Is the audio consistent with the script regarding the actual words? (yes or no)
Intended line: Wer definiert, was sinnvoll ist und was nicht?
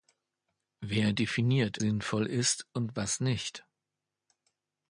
no